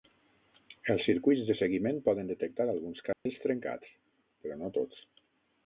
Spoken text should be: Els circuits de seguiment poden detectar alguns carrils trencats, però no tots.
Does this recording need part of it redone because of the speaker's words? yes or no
no